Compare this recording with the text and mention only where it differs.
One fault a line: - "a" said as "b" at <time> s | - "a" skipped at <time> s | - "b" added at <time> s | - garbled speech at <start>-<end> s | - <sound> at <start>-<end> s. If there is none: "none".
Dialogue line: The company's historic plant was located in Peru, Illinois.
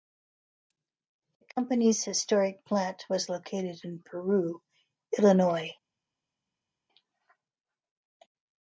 none